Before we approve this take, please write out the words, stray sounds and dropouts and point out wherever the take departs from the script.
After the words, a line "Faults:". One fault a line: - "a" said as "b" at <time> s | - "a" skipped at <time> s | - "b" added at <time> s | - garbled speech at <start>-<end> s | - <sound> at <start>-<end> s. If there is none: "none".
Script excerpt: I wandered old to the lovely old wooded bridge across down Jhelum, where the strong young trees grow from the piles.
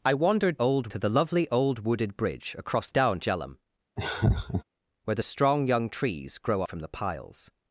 I wandered old to the lovely old wooded bridge across down Jhelum, where the strong young trees grow from the piles.
Faults:
- laugh at 4.0-4.6 s